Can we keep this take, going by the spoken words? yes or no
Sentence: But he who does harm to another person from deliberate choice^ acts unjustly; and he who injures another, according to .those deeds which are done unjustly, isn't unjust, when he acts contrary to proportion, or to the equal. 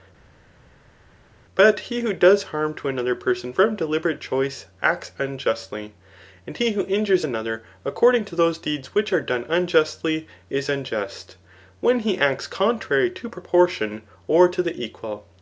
no